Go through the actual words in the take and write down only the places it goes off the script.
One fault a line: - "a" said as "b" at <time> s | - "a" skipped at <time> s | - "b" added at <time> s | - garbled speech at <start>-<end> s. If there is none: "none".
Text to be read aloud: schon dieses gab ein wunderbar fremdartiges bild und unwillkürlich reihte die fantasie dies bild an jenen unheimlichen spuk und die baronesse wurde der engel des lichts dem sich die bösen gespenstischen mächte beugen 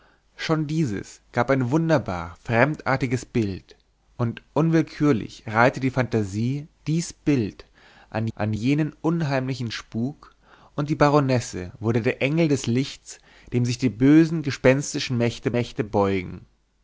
- "an" added at 8.3 s
- "mächte" added at 15.5 s